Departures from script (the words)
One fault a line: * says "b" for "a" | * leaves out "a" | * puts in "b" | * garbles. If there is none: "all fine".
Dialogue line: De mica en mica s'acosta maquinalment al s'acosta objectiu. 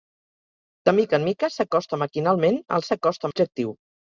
all fine